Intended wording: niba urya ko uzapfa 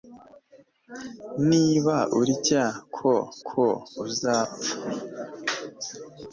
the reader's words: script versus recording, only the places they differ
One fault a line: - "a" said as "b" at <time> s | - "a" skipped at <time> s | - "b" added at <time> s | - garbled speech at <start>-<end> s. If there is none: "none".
- "ko" added at 3.5 s